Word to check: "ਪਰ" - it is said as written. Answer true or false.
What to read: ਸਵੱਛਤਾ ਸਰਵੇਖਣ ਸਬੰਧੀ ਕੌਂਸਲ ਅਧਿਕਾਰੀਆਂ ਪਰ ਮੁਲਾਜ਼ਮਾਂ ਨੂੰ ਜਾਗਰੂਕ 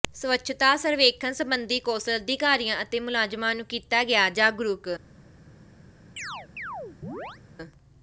false